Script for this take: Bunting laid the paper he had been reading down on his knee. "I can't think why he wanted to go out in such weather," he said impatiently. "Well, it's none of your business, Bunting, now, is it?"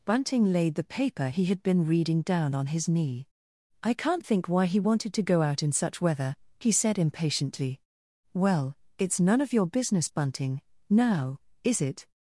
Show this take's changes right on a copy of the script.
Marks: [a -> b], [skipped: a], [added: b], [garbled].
Bunting laid the paper he had been reading down on his knee. "I can't think why he wanted to go out in such weather," he said impatiently. "Well, it's none of your business, Bunting, now, is it?"